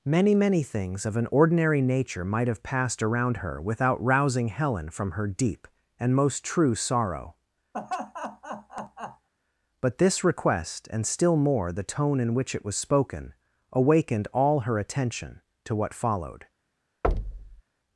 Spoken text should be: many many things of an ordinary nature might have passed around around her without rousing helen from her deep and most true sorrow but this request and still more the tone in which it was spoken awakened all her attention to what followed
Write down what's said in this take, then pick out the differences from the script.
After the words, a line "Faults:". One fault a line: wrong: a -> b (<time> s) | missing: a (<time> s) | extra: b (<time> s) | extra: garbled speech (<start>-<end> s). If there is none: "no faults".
many many things of an ordinary nature might have passed around her without rousing helen from her deep and most true sorrow but this request and still more the tone in which it was spoken awakened all her attention to what followed
Faults:
missing: around (3.4 s)